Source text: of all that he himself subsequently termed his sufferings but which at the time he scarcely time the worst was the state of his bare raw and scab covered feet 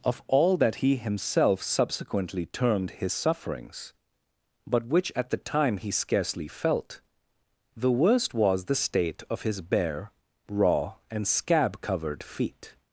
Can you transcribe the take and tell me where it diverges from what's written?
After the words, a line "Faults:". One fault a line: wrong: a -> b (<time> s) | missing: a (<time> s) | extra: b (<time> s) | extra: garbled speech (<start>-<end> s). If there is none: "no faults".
of all that he himself subsequently termed his sufferings but which at the time he scarcely felt the worst was the state of his bare raw and scab covered feet
Faults:
wrong: time -> felt (6.5 s)